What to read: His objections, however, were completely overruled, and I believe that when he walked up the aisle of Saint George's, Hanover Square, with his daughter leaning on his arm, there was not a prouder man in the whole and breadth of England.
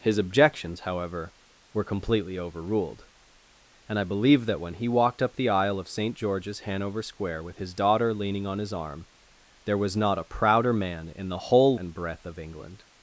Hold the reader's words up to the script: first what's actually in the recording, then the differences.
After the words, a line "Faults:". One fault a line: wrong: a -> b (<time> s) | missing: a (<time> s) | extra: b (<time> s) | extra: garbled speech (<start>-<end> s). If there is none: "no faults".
His objections, however, were completely overruled, and I believe that when he walked up the aisle of Saint George's, Hanover Square, with his daughter leaning on his arm, there was not a prouder man in the whole and breadth of England.
Faults:
no faults